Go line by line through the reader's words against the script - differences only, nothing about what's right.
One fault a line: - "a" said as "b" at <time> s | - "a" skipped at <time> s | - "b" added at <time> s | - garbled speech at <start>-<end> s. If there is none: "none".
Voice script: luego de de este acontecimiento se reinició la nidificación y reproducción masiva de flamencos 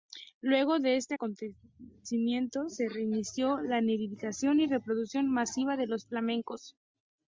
- "de" skipped at 0.9 s
- "los" added at 5.9 s